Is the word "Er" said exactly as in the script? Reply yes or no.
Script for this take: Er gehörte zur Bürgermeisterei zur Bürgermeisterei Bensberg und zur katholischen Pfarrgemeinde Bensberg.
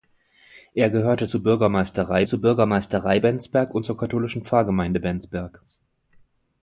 yes